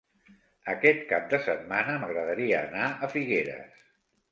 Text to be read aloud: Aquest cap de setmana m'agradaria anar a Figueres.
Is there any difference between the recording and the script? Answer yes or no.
no